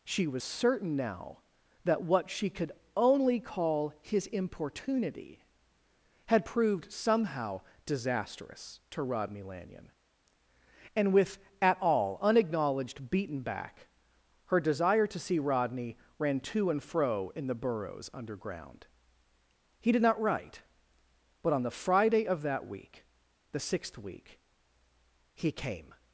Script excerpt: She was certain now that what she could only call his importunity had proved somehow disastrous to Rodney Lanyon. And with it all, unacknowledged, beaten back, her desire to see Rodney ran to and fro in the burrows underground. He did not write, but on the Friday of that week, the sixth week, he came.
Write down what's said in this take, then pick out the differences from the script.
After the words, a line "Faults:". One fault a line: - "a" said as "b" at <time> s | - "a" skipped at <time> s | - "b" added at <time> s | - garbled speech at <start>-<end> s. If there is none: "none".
She was certain now that what she could only call his importunity had proved somehow disastrous to Rodney Lanyon. And with at all, unacknowledged, beaten back, her desire to see Rodney ran to and fro in the burrows underground. He did not write, but on the Friday of that week, the sixth week, he came.
Faults:
- "it" said as "at" at 11.6 s